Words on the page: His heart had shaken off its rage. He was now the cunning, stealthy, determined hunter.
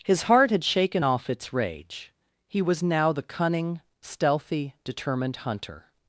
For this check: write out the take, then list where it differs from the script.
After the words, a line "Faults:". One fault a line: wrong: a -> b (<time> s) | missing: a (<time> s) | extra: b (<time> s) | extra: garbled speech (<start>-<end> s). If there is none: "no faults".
His heart had shaken off its rage. He was now the cunning, stealthy, determined hunter.
Faults:
no faults